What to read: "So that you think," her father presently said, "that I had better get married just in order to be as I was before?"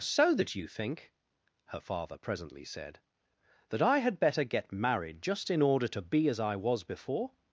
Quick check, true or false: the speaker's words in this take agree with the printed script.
true